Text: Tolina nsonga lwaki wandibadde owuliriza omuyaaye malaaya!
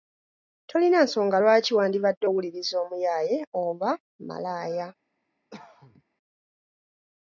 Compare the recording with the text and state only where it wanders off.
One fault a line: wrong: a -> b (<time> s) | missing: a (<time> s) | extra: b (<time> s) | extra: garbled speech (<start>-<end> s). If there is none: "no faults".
extra: oba (3.6 s)